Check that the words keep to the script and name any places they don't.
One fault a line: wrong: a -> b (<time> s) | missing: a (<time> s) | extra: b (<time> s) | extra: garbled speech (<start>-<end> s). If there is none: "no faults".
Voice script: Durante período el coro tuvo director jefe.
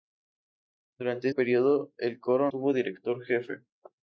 no faults